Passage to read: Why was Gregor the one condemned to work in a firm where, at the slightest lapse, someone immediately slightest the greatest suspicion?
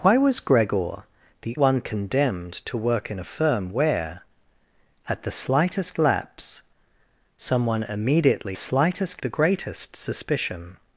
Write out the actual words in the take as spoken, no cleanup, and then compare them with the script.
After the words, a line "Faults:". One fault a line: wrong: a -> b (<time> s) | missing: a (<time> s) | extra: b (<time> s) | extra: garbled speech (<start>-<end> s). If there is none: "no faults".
Why was Gregor the one condemned to work in a firm where, at the slightest lapse, someone immediately slightest the greatest suspicion?
Faults:
no faults